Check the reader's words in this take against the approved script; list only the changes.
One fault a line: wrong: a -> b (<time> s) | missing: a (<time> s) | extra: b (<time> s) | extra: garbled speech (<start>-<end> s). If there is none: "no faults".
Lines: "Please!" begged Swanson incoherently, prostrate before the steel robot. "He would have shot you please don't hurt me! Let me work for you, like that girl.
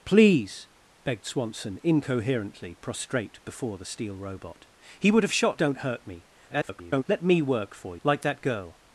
missing: you please (5.6 s)
extra: garbled speech (6.5-7.0 s)
missing: you (8.0 s)